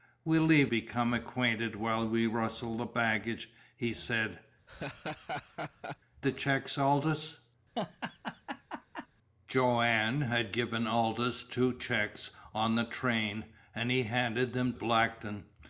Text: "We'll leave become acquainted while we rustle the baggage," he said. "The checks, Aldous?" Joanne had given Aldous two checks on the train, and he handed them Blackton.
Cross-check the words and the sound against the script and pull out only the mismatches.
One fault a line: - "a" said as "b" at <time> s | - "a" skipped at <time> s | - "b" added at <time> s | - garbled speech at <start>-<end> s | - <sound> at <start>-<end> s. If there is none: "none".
- laugh at 4.7-6.0 s
- laugh at 7.8-9.1 s